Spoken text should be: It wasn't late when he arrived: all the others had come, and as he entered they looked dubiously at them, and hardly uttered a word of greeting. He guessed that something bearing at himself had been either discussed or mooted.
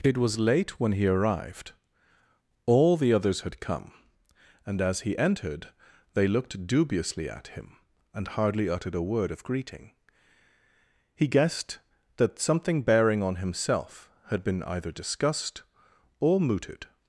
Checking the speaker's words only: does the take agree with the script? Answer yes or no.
no